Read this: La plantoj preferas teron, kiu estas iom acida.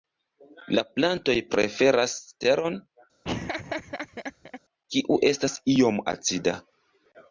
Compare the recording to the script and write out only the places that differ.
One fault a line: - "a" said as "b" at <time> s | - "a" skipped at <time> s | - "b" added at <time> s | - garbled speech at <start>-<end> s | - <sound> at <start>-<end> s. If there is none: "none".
- laugh at 3.2-4.6 s